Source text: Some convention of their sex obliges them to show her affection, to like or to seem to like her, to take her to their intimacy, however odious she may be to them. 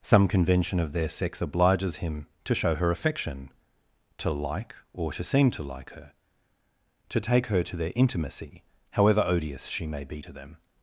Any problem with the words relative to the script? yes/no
yes